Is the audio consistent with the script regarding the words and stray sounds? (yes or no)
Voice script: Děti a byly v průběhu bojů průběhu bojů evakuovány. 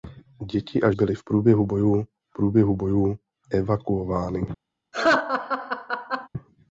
no